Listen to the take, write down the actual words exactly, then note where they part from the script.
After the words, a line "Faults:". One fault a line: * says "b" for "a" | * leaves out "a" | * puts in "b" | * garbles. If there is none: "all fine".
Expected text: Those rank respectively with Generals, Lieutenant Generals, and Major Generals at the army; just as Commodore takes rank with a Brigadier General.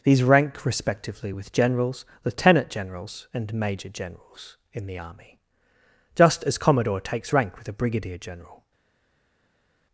These rank respectively with Generals, Lieutenant Generals, and Major Generals in the army; just as Commodore takes rank with a Brigadier General.
Faults:
* says "These" for "Those"
* says "in" for "at"